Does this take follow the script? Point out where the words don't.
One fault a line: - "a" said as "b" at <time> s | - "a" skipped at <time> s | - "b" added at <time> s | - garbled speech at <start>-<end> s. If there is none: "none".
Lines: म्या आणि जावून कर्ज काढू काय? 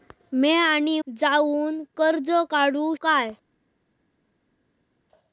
none